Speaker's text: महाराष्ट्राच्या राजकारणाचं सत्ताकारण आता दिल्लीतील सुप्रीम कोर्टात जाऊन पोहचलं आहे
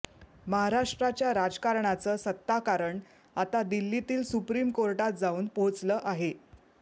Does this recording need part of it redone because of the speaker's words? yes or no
no